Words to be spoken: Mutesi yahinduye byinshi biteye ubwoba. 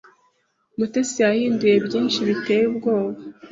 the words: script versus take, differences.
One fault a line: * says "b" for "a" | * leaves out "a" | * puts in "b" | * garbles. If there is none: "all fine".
all fine